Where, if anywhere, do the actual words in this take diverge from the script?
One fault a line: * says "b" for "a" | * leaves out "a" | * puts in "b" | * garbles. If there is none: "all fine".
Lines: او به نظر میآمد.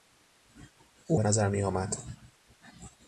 all fine